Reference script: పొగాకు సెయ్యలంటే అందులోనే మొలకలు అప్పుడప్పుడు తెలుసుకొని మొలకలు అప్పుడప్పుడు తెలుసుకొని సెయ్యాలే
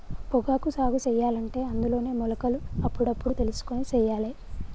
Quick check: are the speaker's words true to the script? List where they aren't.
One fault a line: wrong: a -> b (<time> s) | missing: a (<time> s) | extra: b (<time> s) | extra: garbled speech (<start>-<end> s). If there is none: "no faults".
extra: సాగు (0.7 s)
missing: మొలకలు అప్పుడప్పుడు తెలుసుకొని (3.8 s)